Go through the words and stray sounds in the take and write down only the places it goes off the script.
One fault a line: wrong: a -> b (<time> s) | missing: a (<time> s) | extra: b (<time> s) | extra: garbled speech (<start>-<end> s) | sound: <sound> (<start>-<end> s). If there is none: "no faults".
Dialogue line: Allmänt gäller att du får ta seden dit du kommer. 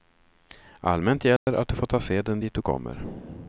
sound: dropout (1.4-1.5 s)